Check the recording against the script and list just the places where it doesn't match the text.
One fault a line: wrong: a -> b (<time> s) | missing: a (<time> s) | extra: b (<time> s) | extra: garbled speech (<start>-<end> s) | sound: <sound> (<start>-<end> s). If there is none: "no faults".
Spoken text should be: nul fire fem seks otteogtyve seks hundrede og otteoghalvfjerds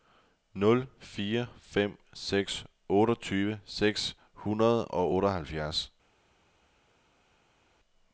no faults